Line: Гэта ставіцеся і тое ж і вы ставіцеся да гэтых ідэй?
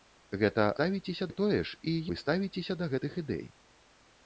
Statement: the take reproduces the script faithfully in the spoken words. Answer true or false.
true